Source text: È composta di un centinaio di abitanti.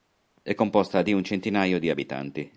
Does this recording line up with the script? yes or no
yes